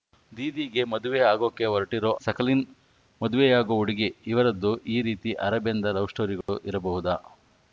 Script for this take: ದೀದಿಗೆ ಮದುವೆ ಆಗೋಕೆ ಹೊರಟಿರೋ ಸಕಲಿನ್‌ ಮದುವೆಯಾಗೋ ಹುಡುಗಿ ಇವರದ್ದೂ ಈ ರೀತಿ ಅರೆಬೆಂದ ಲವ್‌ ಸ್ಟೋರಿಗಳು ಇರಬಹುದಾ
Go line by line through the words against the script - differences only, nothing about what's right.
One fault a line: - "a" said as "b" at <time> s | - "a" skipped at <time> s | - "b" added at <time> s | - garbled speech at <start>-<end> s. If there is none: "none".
none